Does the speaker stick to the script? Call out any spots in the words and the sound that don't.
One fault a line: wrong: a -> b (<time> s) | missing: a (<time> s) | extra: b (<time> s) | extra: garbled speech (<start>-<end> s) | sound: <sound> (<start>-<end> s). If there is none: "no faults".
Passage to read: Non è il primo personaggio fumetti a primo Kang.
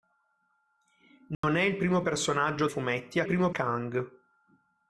sound: dropout (1.3-1.4 s)